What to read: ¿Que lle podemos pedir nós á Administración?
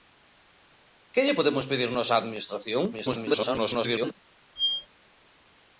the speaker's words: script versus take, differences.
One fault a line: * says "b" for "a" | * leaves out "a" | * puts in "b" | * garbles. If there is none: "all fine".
* garbles